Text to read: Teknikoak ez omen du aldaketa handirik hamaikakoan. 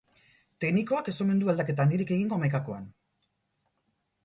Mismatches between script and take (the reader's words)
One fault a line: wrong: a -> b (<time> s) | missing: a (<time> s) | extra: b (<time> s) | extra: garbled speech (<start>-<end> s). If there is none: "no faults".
extra: egingo (2.2 s)